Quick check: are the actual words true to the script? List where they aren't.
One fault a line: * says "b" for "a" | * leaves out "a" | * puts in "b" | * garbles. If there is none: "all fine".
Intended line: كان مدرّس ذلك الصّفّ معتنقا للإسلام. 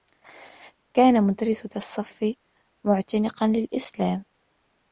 * leaves out "ذلك"